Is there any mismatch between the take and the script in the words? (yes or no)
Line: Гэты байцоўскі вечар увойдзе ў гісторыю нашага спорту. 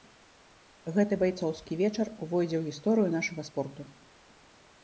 no